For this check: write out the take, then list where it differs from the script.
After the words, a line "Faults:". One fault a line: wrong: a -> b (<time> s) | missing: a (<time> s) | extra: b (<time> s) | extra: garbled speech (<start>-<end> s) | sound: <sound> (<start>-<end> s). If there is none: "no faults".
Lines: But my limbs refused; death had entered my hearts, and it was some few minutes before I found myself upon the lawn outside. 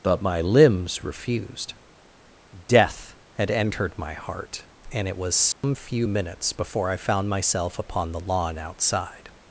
But my limbs refused; death had entered my heart, and it was some few minutes before I found myself upon the lawn outside.
Faults:
wrong: hearts -> heart (4.1 s)
sound: dropout (5.5-5.6 s)